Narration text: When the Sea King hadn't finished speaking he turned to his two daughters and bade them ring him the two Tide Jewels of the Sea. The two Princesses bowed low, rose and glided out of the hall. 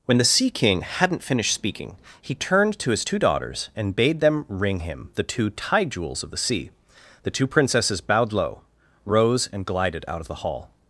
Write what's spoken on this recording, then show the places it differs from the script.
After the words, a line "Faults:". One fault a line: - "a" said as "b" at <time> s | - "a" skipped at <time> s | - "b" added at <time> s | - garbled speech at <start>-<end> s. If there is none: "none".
When the Sea King hadn't finished speaking he turned to his two daughters and bade them ring him the two Tide Jewels of the Sea. The two Princesses bowed low, rose and glided out of the hall.
Faults:
none